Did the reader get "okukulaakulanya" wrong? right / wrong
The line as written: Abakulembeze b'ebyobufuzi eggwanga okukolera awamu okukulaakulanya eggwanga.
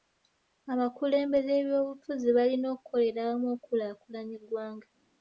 right